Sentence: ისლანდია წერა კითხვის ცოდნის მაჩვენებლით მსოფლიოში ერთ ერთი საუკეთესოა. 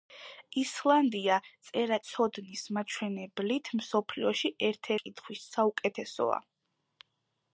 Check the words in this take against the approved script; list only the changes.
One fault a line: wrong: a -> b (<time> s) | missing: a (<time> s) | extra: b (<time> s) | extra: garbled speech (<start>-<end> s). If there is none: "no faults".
missing: კითხვის (2.0 s)
wrong: ერთი -> კითხვის (5.0 s)